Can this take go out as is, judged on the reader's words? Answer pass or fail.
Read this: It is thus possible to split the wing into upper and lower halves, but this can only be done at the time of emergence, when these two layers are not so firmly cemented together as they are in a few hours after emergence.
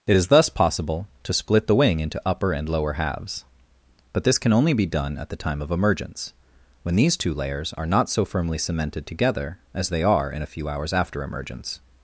pass